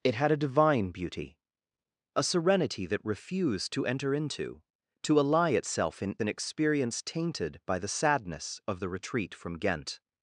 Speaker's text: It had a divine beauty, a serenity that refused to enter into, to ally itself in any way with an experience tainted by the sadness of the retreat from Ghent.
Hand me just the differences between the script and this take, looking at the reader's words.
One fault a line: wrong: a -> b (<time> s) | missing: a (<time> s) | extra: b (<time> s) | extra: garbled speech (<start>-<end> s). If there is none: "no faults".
missing: any way with (6.2 s)